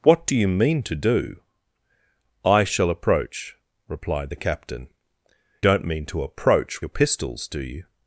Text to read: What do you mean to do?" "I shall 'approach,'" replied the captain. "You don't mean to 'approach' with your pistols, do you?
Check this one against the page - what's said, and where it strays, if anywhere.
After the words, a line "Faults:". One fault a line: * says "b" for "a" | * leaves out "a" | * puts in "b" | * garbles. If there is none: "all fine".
What do you mean to do?" "I shall 'approach,'" replied the captain. "Don't mean to 'approach' your pistols, do you?
Faults:
* leaves out "You"
* leaves out "with"